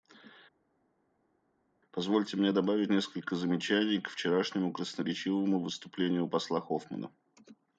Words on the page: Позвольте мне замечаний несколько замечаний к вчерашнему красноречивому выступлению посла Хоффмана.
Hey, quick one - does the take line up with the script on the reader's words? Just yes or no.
no